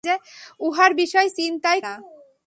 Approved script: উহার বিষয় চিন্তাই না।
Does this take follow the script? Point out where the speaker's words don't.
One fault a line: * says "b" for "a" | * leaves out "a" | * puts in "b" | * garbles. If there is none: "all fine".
all fine